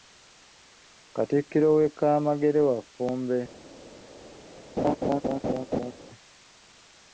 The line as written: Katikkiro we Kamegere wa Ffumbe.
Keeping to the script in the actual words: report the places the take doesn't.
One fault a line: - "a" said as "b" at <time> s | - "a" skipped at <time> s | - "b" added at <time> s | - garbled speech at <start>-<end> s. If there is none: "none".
none